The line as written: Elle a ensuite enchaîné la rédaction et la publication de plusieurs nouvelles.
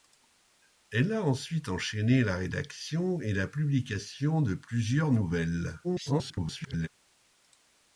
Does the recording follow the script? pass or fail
fail